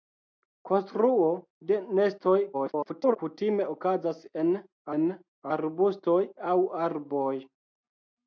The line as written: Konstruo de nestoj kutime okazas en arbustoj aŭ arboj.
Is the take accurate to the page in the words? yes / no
no